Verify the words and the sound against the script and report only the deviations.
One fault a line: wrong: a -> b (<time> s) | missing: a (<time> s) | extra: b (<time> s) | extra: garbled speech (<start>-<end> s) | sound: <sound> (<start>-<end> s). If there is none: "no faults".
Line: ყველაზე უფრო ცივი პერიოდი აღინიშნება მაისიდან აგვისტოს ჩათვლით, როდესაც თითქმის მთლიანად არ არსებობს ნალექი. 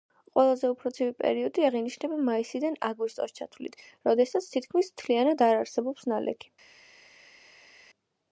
no faults